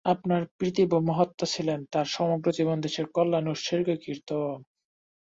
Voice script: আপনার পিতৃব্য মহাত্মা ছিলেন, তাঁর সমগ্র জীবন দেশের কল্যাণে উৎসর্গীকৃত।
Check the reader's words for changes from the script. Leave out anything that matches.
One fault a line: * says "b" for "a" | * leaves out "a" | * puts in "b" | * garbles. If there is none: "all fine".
all fine